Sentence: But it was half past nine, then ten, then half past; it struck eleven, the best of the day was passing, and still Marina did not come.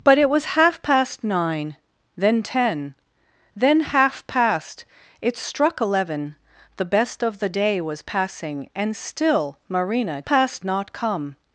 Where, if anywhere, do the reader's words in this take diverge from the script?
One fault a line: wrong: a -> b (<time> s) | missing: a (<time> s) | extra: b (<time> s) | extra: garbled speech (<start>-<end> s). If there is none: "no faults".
wrong: did -> past (10.2 s)